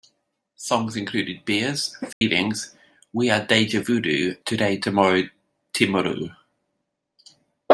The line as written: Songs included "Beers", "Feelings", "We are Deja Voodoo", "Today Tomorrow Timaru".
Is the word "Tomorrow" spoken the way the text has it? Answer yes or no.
yes